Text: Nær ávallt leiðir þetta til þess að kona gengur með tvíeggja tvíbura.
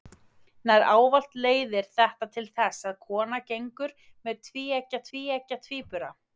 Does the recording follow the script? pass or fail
fail